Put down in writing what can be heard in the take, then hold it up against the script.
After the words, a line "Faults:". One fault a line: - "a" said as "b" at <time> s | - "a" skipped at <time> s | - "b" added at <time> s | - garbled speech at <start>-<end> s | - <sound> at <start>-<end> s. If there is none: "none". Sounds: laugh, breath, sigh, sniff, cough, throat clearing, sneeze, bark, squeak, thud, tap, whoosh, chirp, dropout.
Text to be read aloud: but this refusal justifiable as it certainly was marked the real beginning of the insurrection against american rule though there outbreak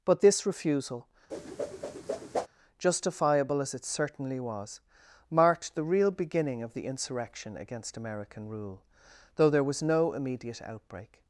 but this refusal justifiable as it certainly was marked the real beginning of the insurrection against american rule though there was no immediate outbreak
Faults:
- whoosh at 1.3-2.5 s
- "was no immediate" added at 9.6 s